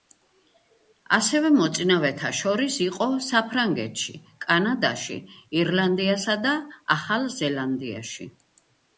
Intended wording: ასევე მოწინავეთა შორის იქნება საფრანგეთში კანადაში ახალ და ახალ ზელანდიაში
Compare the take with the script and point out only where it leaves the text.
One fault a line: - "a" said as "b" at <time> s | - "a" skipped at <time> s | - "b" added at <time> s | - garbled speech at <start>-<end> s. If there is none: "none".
- "იქნება" said as "იყო" at 2.9 s
- "ახალ" said as "ირლანდიასა" at 5.6 s